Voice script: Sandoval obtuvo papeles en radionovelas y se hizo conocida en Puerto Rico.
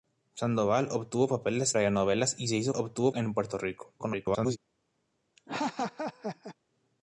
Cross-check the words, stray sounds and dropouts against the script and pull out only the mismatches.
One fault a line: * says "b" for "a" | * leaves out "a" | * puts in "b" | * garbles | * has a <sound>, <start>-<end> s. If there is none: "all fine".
* leaves out "en"
* says "obtuvo" for "conocida"
* garbles
* has a laugh, 5.4-6.6 s